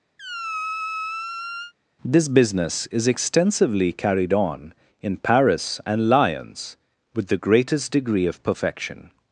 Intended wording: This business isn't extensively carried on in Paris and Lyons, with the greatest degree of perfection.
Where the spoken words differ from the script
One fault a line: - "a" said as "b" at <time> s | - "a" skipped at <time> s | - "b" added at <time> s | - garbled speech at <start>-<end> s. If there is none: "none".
- "isn't" said as "is" at 2.9 s